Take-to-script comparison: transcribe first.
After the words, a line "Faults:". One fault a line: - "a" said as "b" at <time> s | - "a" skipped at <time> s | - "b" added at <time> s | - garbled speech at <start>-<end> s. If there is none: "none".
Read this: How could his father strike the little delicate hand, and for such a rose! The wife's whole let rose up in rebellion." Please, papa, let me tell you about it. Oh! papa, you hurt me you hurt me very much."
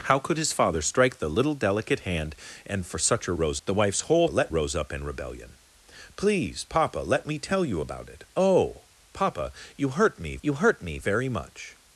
How could his father strike the little delicate hand, and for such a rose! The wife's whole let rose up in rebellion." Please, papa, let me tell you about it. Oh! papa, you hurt me you hurt me very much."
Faults:
none